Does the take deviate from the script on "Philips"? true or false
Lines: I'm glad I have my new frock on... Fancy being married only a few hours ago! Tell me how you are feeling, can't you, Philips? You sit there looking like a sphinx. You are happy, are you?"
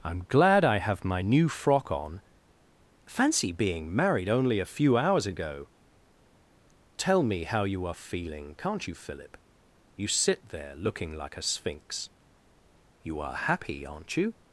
true